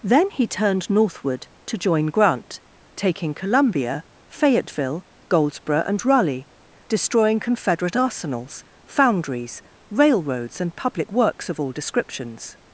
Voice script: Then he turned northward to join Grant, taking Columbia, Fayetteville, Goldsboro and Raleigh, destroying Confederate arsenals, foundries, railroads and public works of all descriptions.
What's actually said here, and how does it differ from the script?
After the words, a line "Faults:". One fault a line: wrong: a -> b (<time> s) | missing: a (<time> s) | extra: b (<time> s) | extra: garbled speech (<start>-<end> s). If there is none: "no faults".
Then he turned northward to join Grant, taking Columbia, Fayetteville, Goldsboro and Raleigh, destroying Confederate arsenals, foundries, railroads and public works of all descriptions.
Faults:
no faults